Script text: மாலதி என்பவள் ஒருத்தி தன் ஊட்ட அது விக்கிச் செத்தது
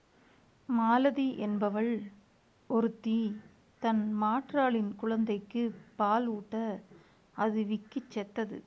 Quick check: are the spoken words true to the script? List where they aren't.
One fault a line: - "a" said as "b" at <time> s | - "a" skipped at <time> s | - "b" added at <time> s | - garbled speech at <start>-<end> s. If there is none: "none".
- "மாற்றாளின் குழந்தைக்குப் பால்" added at 4.2 s